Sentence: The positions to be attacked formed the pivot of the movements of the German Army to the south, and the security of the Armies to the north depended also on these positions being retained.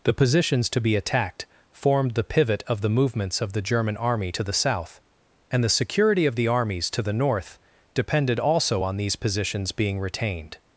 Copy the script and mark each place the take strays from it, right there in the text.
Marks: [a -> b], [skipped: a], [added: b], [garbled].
The positions to be attacked formed the pivot of the movements of the German Army to the south, and the security of the Armies to the north depended also on these positions being retained.